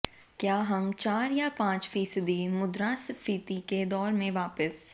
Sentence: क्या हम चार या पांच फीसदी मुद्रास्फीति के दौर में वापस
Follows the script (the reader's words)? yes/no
yes